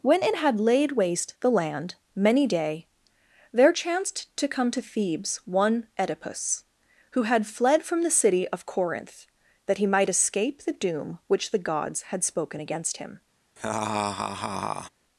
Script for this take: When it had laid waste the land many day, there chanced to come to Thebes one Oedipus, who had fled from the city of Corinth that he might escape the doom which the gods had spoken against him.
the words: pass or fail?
pass